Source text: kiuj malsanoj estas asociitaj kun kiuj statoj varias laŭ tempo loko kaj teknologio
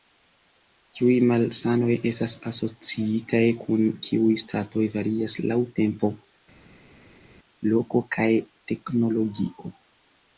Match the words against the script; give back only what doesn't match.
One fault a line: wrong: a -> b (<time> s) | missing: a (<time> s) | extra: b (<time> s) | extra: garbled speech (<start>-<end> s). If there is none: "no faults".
no faults